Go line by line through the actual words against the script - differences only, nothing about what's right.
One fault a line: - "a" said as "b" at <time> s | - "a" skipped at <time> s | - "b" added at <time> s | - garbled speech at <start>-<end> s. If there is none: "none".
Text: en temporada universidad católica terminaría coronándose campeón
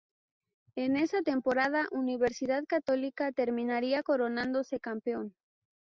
- "esa" added at 1.0 s